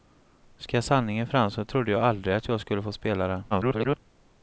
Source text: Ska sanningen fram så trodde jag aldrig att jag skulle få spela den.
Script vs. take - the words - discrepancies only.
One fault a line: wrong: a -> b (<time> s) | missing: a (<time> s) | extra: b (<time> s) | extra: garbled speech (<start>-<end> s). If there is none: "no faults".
extra: garbled speech (3.5-4.0 s)